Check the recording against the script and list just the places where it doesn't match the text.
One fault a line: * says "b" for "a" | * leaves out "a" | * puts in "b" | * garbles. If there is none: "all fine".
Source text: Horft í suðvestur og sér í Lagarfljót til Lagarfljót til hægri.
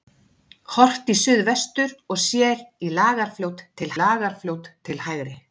all fine